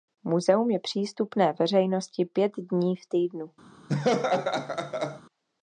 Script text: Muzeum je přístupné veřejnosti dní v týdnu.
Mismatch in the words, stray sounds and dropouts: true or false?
true